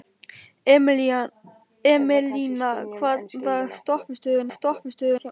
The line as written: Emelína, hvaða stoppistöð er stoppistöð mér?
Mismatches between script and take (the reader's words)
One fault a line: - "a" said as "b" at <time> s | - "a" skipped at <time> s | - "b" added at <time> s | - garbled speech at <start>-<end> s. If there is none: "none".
none